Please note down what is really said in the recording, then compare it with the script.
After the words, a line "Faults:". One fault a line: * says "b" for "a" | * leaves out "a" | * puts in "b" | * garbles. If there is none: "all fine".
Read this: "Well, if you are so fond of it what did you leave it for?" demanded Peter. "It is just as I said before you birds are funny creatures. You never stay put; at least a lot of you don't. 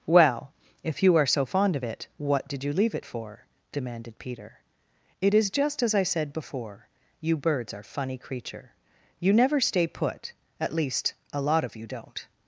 "Well, if you are so fond of it what did you leave it for?" demanded Peter. "It is just as I said before you birds are funny creature. You never stay put; at least a lot of you don't.
Faults:
* says "creature" for "creatures"